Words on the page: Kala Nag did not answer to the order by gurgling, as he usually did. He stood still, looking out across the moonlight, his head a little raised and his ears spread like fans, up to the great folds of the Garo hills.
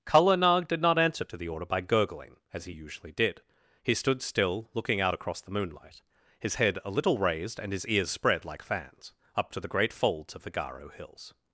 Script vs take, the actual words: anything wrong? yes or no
no